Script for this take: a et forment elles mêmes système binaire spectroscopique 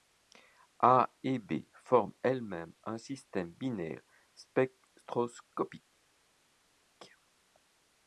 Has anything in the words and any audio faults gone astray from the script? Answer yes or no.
yes